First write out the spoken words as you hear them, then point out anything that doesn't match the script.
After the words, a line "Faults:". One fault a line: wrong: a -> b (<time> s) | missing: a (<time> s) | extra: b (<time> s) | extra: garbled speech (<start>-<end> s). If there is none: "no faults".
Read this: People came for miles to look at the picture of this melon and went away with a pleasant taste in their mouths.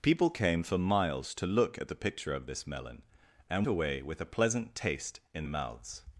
People came for miles to look at the picture of this melon and away with a pleasant taste in mouths.
Faults:
missing: went (3.7 s)
missing: their (5.4 s)